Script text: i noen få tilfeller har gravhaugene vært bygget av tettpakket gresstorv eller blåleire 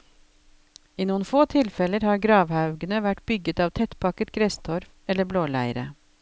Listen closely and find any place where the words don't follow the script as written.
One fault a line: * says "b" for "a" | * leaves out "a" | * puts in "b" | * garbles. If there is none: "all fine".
all fine